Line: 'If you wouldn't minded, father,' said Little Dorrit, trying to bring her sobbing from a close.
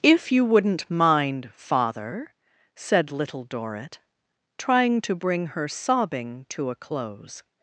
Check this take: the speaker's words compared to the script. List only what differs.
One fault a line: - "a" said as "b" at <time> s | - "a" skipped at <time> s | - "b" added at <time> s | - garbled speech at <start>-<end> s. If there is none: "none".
- "minded" said as "mind" at 0.9 s
- "from" said as "to" at 6.5 s